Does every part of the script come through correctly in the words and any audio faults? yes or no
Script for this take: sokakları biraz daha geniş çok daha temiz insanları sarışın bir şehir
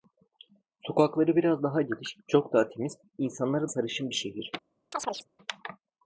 no